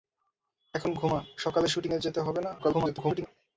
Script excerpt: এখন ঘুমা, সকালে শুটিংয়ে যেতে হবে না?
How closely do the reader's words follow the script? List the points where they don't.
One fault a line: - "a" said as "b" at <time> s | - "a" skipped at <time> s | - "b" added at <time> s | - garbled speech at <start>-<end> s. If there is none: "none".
- garbled speech at 2.6-3.3 s